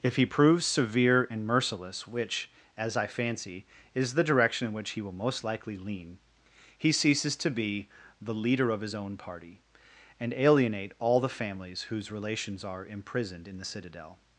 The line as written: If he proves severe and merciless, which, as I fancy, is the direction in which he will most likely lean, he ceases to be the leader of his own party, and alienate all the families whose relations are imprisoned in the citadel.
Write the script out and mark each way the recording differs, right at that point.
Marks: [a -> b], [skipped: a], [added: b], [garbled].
If he proves severe and merciless, which, as I fancy, is the direction in which he will most likely lean, he ceases to be the leader of his own party, and alienate all the families whose relations are imprisoned in the citadel.